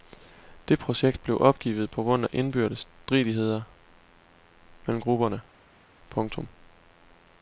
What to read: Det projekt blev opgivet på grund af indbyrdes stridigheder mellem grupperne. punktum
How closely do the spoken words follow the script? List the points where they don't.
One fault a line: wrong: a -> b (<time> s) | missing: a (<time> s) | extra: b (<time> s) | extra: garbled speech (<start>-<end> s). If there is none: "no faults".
no faults